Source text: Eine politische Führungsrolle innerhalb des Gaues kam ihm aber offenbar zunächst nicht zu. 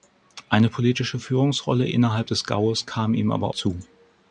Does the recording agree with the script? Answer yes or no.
no